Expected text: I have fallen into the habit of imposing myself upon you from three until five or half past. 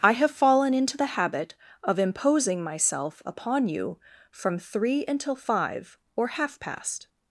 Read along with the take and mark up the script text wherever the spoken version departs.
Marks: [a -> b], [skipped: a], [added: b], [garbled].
I have fallen into the habit of imposing myself upon you from three until five or half past.